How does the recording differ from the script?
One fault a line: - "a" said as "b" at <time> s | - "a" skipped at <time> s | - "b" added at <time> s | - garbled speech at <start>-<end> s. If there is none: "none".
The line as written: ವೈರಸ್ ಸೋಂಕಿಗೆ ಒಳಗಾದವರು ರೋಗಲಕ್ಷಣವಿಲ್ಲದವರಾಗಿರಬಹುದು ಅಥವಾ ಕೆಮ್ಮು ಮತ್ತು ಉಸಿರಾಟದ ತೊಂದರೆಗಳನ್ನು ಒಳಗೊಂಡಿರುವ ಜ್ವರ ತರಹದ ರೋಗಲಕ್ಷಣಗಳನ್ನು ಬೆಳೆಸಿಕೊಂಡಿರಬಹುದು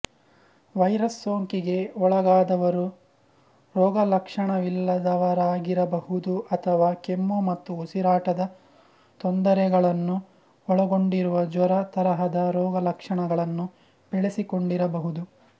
none